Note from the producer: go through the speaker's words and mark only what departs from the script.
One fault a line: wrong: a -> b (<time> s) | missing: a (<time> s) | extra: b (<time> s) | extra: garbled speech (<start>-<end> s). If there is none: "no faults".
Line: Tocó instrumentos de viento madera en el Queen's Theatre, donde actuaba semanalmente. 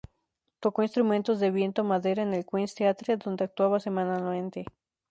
no faults